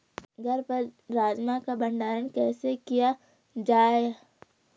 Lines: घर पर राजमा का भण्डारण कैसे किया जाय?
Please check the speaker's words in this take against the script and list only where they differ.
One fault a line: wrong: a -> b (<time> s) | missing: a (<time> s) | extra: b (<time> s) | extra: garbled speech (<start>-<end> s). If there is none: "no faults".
no faults